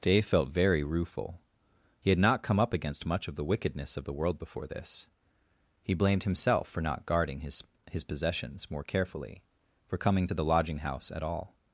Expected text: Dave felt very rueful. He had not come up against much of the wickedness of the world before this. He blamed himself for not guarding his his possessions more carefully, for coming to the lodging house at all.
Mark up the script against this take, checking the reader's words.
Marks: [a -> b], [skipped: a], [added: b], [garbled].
Dave felt very rueful. He had not come up against much of the wickedness of the world before this. He blamed himself for not guarding his his possessions more carefully, for coming to the lodging house at all.